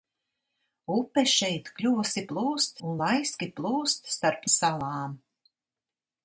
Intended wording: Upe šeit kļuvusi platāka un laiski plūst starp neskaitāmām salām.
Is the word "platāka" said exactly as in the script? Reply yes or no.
no